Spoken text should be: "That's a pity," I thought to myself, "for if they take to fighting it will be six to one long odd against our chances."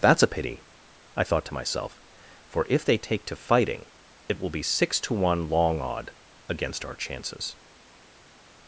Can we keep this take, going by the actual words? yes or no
yes